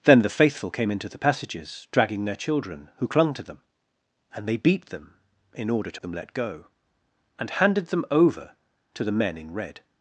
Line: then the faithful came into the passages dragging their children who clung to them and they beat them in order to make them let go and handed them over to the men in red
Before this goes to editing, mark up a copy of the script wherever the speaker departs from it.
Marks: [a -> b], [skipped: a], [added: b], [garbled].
then the faithful came into the passages dragging their children who clung to them and they beat them in order to [skipped: make] them let go and handed them over to the men in red